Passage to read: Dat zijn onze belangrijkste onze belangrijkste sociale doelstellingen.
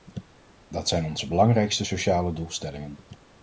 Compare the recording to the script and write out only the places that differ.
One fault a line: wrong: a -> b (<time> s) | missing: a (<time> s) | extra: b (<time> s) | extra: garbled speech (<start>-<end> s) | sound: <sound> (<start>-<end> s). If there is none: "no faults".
missing: onze belangrijkste (1.8 s)